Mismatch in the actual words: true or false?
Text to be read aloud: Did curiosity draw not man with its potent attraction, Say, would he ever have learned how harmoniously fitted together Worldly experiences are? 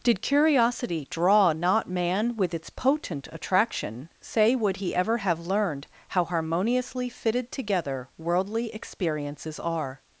false